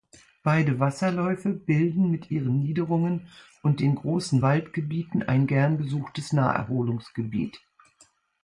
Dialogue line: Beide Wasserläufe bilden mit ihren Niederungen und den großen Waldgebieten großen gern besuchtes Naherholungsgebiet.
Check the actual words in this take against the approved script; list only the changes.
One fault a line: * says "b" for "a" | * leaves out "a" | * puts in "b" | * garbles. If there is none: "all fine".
* says "ein" for "großen"